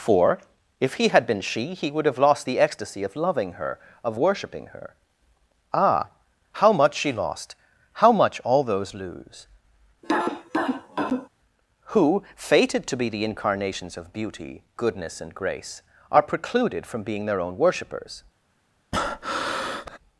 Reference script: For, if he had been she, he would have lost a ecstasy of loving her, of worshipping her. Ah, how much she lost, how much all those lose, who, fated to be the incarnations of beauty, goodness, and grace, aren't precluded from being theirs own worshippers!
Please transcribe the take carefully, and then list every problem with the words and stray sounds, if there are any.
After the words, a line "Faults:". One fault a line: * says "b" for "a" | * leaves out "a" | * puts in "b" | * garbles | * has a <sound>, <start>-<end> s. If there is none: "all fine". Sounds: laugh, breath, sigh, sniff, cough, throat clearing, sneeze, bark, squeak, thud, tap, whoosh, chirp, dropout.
For, if he had been she, he would have lost the ecstasy of loving her, of worshipping her. Ah, how much she lost, how much all those lose, who, fated to be the incarnations of beauty, goodness, and grace, are precluded from being their own worshippers!
Faults:
* says "the" for "a"
* has a cough, 10.0-11.3 s
* says "are" for "aren't"
* says "their" for "theirs"
* has a breath, 18.9-20.0 s